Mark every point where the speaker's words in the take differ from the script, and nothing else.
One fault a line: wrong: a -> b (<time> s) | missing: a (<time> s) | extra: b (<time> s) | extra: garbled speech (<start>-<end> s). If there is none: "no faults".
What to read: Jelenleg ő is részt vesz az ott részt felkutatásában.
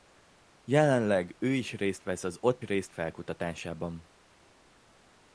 no faults